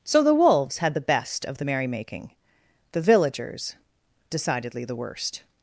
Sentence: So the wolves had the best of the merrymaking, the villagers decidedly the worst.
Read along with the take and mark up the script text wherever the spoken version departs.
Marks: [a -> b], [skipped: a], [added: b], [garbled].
So the wolves had the best of the merrymaking, the villagers decidedly the worst.